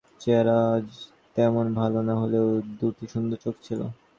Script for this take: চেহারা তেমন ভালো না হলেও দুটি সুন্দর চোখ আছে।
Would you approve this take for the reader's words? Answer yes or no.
no